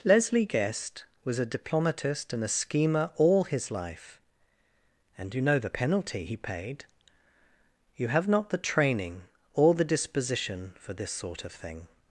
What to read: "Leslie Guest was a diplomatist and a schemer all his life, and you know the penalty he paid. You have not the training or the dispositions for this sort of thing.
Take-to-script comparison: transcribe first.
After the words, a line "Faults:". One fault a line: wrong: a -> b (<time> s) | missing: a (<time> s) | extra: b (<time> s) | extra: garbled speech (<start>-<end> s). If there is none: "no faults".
"Leslie Guest was a diplomatist and a schemer all his life, and you know the penalty he paid. You have not the training or the disposition for this sort of thing.
Faults:
wrong: dispositions -> disposition (9.8 s)